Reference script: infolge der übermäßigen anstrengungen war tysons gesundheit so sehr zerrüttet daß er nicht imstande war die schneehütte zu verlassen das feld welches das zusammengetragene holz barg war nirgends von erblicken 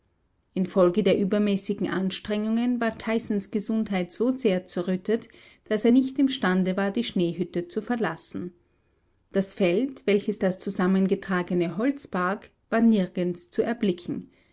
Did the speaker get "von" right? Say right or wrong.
wrong